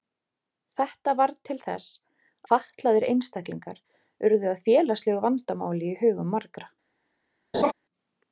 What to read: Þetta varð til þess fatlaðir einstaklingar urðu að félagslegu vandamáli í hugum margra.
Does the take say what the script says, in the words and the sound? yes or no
no